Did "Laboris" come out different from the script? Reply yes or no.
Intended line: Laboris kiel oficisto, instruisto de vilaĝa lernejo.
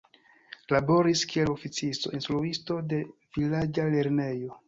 no